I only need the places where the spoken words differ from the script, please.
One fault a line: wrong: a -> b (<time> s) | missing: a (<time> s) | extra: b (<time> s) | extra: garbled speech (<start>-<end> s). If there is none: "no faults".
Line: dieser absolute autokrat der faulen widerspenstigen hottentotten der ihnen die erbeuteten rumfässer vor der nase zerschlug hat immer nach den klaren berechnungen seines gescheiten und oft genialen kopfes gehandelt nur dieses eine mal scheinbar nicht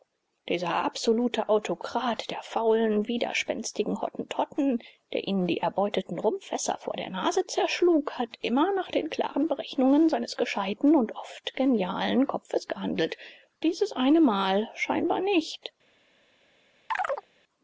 missing: nur (13.2 s)